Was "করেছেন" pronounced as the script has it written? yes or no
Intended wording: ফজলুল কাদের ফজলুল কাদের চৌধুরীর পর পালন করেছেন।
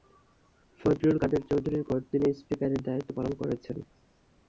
yes